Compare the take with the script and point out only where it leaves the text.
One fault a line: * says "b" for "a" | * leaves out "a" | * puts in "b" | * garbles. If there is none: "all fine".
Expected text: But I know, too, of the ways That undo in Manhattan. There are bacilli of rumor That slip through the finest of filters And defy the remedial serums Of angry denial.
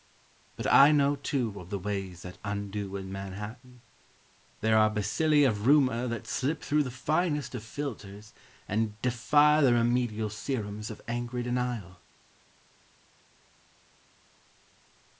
all fine